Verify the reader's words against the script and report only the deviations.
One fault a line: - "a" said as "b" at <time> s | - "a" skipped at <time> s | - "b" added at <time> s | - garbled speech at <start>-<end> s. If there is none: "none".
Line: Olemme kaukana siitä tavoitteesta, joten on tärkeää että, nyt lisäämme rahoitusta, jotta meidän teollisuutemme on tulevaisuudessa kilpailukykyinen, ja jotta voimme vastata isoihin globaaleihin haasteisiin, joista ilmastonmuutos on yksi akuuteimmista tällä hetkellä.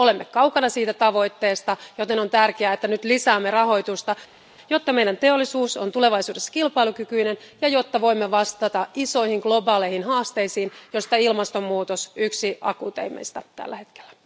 none